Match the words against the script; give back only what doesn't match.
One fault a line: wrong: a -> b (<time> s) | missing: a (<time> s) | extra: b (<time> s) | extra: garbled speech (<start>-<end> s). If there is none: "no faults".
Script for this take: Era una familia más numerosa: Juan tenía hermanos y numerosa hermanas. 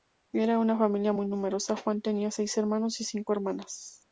wrong: más -> muy (1.1 s)
extra: seis (2.3 s)
wrong: numerosa -> cinco (3.0 s)